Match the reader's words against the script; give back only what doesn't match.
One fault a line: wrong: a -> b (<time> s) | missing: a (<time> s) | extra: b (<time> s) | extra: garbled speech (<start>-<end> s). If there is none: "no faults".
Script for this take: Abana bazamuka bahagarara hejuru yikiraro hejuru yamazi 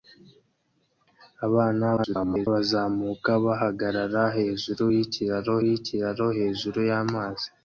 extra: garbled speech (2.0-2.5 s)
extra: yikiraro (5.7 s)